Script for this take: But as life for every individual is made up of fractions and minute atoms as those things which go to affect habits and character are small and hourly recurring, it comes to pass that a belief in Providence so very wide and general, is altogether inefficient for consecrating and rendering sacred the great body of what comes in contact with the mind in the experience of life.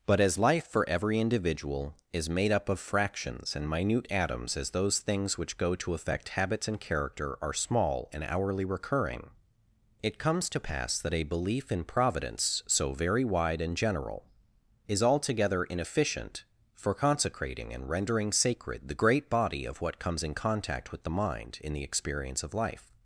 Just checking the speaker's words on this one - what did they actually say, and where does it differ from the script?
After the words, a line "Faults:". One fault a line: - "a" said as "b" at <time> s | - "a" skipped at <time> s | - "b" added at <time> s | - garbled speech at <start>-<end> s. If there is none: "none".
But as life for every individual is made up of fractions and minute atoms as those things which go to affect habits and character are small and hourly recurring, it comes to pass that a belief in Providence so very wide and general, is altogether inefficient for consecrating and rendering sacred the great body of what comes in contact with the mind in the experience of life.
Faults:
none